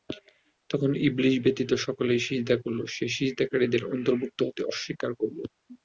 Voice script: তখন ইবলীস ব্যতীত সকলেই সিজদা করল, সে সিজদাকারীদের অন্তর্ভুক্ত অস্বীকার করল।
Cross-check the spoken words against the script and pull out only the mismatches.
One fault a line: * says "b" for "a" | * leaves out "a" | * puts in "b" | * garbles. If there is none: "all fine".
* puts in "হতে"